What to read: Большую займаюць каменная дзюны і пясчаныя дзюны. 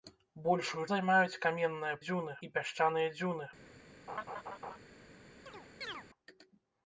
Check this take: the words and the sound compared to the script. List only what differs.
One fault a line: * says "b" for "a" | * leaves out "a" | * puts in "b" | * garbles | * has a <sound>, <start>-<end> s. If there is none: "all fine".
* has a laugh, 4.1-4.8 s
* has a chirp, 5.5-6.1 s